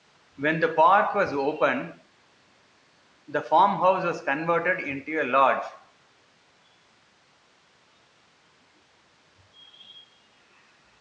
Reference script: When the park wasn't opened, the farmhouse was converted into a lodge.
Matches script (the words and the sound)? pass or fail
fail